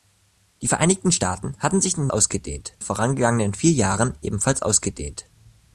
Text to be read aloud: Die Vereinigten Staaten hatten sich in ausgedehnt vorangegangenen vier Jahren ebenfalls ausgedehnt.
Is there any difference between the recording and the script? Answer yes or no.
no